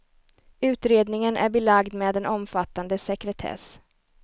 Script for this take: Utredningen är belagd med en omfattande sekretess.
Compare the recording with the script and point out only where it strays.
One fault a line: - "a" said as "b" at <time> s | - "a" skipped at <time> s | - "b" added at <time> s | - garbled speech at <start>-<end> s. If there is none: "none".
none